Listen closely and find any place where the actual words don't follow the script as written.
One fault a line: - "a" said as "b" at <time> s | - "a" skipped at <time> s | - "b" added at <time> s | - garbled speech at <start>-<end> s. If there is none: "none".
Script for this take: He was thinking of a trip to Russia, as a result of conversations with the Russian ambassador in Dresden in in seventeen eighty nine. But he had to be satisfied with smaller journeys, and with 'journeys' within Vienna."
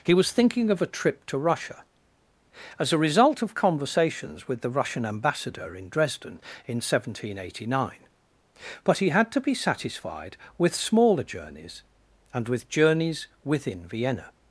- "in" skipped at 6.8 s